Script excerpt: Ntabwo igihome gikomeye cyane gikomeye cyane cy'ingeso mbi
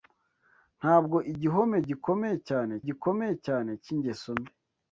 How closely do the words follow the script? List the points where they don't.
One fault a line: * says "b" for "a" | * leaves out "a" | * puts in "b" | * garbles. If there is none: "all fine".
all fine